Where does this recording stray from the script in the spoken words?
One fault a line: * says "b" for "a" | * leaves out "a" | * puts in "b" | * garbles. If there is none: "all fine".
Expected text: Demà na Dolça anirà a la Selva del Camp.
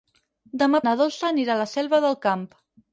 all fine